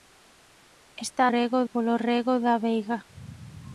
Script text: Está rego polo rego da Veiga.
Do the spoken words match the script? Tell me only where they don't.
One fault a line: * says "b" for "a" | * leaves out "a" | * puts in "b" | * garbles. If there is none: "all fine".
all fine